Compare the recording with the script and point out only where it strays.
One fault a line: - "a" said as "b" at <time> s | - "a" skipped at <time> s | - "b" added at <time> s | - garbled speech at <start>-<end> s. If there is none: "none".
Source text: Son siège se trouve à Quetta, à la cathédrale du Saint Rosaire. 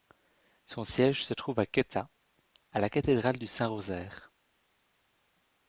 none